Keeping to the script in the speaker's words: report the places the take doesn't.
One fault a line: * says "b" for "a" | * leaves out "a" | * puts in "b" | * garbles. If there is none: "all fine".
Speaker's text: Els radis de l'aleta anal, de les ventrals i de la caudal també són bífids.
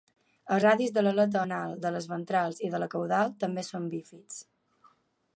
all fine